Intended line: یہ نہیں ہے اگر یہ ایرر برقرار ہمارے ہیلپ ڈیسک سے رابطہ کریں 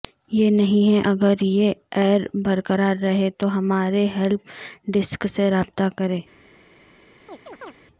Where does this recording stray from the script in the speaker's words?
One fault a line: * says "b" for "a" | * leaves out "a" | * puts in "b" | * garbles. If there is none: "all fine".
* puts in "رہے تو"